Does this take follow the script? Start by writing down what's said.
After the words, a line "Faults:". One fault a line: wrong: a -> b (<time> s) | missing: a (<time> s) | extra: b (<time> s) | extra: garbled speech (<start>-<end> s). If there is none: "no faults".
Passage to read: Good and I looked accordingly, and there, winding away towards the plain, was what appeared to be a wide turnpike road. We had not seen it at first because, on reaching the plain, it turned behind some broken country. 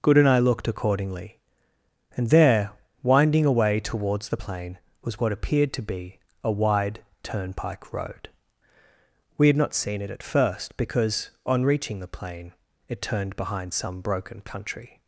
Good and I looked accordingly, and there, winding away towards the plain, was what appeared to be a wide turnpike road. We had not seen it at first because, on reaching the plain, it turned behind some broken country.
Faults:
no faults